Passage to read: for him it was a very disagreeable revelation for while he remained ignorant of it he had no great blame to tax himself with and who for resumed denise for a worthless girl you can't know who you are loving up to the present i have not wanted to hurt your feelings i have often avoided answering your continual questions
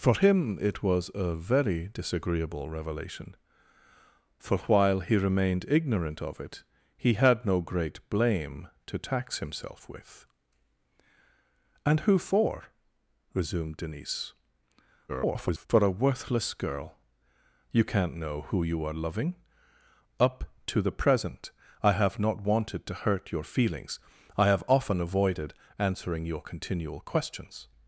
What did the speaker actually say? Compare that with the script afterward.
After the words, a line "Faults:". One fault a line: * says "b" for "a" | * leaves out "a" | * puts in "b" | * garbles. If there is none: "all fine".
for him it was a very disagreeable revelation for while he remained ignorant of it he had no great blame to tax himself with and who for resumed denise [garbled] for a worthless girl you can't know who you are loving up to the present i have not wanted to hurt your feelings i have often avoided answering your continual questions
Faults:
* garbles